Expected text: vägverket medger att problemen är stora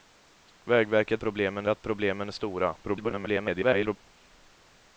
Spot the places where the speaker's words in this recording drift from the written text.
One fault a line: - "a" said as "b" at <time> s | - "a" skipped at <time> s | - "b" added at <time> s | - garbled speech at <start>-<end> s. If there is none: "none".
- "medger" said as "problemen" at 1.2 s
- garbled speech at 2.8-4.0 s